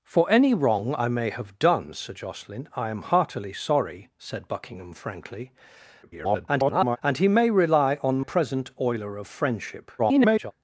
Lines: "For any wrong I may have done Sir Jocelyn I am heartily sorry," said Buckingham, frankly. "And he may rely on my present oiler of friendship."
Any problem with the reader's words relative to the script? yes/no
yes